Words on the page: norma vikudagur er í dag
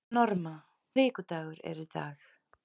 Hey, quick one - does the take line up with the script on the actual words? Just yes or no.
yes